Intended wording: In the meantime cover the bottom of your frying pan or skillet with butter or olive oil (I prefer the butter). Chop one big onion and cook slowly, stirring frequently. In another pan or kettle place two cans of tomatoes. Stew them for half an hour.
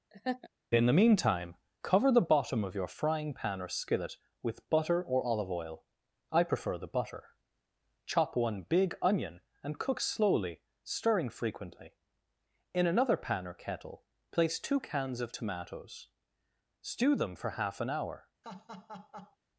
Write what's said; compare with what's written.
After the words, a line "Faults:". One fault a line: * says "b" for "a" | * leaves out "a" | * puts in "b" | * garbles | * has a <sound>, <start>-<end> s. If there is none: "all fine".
In the meantime cover the bottom of your frying pan or skillet with butter or olive oil (I prefer the butter). Chop one big onion and cook slowly, stirring frequently. In another pan or kettle place two cans of tomatoes. Stew them for half an hour.
Faults:
* has a laugh, 0.1-0.5 s
* has a laugh, 18.4-19.4 s